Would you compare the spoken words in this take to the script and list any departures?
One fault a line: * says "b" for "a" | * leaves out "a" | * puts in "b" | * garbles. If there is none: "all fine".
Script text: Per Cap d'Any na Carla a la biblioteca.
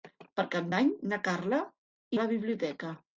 all fine